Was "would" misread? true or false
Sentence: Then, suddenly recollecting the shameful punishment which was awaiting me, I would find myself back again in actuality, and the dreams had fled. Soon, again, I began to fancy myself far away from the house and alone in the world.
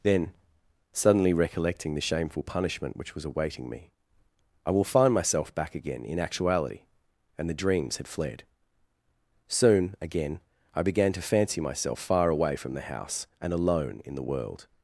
true